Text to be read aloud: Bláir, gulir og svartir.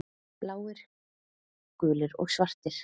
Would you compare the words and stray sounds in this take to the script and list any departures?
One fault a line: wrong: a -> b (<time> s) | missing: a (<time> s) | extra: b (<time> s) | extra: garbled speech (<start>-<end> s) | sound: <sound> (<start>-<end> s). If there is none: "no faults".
no faults